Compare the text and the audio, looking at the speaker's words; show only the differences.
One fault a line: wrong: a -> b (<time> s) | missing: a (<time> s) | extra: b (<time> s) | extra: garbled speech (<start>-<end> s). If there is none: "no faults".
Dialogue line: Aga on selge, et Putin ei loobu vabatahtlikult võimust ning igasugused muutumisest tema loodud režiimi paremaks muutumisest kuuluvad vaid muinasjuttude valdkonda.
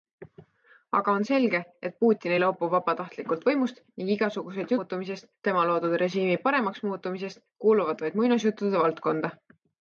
no faults